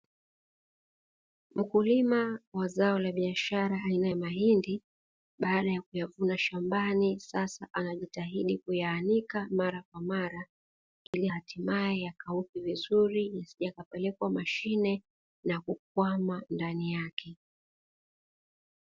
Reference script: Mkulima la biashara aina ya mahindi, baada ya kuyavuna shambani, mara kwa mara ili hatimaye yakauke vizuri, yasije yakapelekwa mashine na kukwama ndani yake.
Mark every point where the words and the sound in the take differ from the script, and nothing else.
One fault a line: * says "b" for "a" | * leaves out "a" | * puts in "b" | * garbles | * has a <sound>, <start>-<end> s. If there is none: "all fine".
* puts in "wa zao"
* puts in "sasa anajitahidi kuyaanika"
* has a dropout, 11.1-11.1 s